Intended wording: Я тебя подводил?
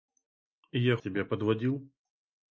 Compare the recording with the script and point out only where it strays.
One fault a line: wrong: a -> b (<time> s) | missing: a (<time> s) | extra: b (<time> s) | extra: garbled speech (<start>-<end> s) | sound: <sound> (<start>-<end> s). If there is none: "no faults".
no faults